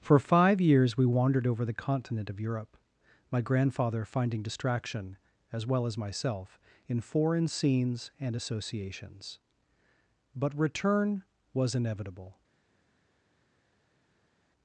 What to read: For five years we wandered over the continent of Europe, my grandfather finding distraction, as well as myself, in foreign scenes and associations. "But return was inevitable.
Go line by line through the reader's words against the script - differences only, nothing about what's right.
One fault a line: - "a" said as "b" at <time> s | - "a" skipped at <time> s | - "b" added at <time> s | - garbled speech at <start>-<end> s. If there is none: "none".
none